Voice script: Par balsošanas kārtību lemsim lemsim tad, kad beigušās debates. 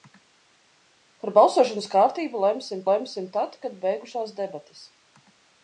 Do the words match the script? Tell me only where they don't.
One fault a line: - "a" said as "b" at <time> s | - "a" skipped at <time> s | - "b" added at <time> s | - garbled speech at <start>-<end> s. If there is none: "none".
none